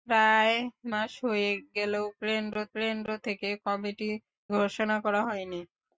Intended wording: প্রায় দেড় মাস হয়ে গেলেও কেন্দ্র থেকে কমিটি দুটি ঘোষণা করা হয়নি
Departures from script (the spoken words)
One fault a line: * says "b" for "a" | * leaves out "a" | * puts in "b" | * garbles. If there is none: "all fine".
* leaves out "দেড়"
* puts in "কেন্দ্র"
* leaves out "দুটি"